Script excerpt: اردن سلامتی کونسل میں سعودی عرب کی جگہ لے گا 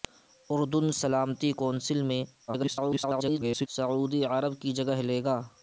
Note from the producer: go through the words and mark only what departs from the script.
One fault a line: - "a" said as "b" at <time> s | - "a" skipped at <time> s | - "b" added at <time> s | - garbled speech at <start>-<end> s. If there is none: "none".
- garbled speech at 2.5-3.7 s